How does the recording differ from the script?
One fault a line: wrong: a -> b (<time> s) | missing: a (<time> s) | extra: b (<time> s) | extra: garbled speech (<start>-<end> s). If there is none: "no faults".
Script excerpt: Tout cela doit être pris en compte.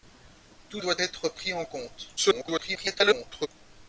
missing: cela (0.8 s)
extra: garbled speech (2.2-3.5 s)